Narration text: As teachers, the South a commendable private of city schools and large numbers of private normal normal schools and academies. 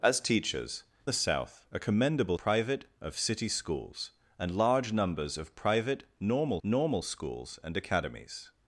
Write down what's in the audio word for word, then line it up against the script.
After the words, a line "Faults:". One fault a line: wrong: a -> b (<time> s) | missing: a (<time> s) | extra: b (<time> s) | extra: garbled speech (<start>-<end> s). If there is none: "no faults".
As teachers, the South a commendable private of city schools and large numbers of private normal normal schools and academies.
Faults:
no faults